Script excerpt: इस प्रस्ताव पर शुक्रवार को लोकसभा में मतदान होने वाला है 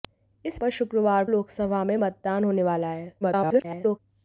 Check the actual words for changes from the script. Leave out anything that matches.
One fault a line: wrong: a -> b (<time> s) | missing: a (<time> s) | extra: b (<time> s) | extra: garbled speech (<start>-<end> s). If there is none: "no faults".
missing: प्रस्ताव (0.6 s)
missing: को (1.2 s)
extra: garbled speech (3.2-4.0 s)